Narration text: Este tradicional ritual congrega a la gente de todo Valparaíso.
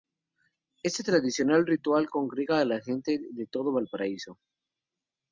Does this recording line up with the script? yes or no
yes